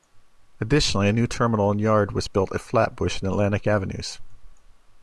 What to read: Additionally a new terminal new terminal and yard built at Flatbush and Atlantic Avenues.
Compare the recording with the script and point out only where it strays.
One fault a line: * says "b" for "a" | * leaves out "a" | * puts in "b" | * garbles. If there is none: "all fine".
* leaves out "new terminal"
* puts in "was"